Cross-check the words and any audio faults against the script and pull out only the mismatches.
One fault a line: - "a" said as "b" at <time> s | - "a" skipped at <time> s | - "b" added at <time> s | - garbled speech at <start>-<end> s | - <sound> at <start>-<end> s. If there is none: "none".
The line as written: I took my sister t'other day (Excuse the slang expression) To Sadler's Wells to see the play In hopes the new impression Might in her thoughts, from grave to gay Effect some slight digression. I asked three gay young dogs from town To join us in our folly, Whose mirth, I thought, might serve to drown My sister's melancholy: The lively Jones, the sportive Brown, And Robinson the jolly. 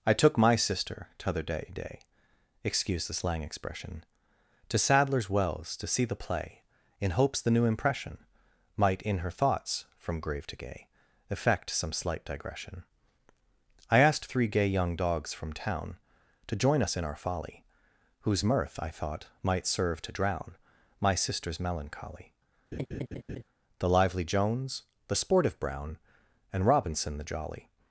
- "day" added at 1.8 s
- laugh at 22.7-23.4 s